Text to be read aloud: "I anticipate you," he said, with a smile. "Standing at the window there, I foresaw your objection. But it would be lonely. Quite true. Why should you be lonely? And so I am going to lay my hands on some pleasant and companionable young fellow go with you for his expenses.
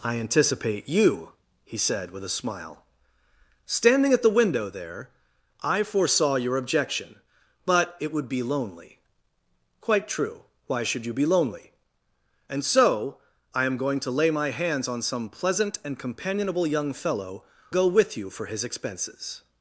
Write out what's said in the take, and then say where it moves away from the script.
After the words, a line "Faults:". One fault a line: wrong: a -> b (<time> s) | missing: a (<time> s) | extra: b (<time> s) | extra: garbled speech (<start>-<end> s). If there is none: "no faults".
"I anticipate you," he said, with a smile. "Standing at the window there, I foresaw your objection. But it would be lonely. Quite true. Why should you be lonely? And so I am going to lay my hands on some pleasant and companionable young fellow go with you for his expenses.
Faults:
no faults